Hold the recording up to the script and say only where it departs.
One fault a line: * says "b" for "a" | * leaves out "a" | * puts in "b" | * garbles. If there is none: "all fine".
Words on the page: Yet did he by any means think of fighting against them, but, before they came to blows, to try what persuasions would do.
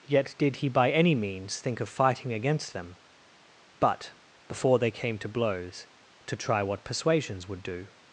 all fine